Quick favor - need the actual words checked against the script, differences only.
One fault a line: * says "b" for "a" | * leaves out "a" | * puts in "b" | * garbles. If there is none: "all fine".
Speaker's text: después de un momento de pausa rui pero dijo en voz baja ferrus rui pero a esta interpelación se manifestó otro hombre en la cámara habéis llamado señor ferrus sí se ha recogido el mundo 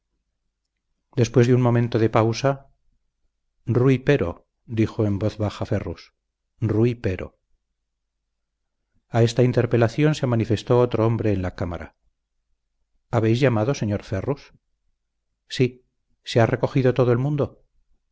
* puts in "todo"